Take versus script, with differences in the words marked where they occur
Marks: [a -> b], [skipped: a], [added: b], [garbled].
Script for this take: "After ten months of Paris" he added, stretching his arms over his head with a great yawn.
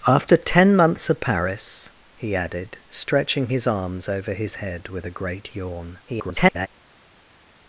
"After ten months of Paris" he added, stretching his arms over his head with a great yawn. [garbled]